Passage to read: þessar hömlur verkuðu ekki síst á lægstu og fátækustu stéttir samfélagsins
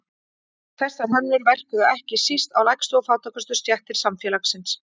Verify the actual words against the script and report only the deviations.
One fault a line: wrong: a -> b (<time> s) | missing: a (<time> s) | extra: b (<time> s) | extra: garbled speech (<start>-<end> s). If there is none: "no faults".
no faults